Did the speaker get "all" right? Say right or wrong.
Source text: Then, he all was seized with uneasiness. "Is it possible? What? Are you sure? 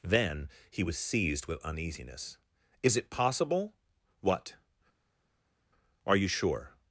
wrong